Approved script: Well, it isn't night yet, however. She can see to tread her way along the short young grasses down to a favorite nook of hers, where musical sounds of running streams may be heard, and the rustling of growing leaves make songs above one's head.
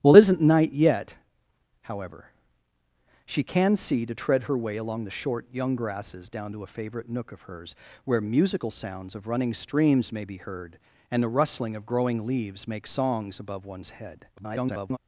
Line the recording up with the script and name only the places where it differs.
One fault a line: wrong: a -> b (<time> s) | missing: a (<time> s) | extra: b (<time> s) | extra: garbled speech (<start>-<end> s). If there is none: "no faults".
extra: garbled speech (14.4-15.0 s)